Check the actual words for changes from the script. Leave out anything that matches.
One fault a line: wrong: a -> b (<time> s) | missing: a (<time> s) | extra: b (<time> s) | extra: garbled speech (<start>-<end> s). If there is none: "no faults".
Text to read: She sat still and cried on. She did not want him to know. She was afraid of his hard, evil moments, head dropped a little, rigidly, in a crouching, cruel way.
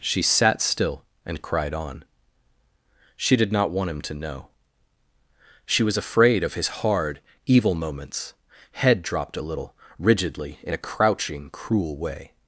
no faults